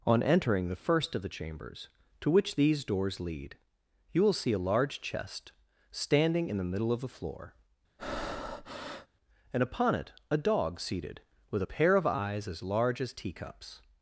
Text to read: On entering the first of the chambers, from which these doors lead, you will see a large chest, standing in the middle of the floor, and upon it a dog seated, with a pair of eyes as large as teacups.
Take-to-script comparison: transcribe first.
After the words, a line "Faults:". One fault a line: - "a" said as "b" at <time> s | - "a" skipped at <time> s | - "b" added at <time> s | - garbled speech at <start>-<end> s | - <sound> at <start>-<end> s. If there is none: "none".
On entering the first of the chambers, to which these doors lead, you will see a large chest, standing in the middle of the floor, and upon it a dog seated, with a pair of eyes as large as teacups.
Faults:
- "from" said as "to" at 2.2 s
- breath at 8.0-9.1 s